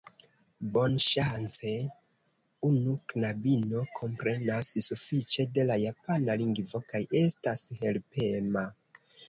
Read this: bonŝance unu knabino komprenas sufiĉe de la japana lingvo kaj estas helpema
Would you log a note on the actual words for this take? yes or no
no